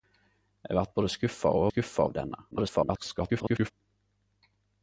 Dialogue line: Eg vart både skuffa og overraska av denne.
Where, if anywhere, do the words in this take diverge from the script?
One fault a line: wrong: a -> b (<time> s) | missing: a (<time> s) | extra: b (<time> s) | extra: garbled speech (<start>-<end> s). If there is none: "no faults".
wrong: overraska -> skuffa (1.7 s)
extra: garbled speech (2.5-3.7 s)